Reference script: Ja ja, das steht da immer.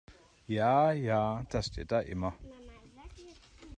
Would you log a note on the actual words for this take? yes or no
no